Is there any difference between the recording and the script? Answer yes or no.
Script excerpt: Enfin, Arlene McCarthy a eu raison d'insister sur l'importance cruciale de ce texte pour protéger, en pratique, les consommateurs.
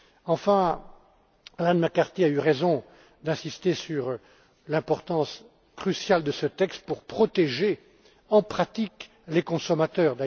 no